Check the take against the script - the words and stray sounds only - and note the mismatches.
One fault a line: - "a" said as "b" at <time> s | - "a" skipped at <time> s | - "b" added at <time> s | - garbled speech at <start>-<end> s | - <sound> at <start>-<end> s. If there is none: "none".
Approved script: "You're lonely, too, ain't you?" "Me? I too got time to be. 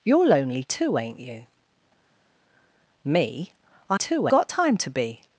none